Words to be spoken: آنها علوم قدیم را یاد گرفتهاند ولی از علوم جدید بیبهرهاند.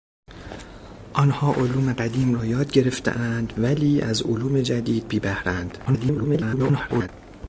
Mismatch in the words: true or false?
true